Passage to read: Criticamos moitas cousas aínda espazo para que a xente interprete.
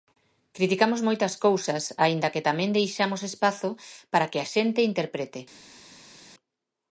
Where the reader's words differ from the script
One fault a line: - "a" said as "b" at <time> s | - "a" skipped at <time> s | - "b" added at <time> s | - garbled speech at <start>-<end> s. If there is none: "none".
- "que tamén deixamos" added at 2.3 s